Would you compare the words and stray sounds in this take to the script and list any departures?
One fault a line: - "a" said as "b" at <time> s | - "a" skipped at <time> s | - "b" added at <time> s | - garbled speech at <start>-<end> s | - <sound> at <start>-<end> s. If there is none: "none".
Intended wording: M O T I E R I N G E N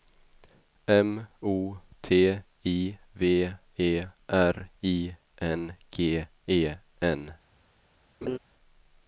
- "V" added at 3.1 s
- laugh at 8.2-8.4 s